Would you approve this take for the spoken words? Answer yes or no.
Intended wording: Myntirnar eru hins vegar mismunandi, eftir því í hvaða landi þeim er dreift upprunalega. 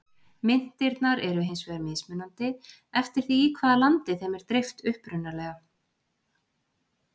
yes